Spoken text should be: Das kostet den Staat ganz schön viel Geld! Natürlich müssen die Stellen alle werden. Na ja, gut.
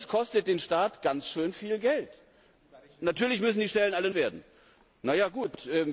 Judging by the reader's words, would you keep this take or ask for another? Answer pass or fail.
pass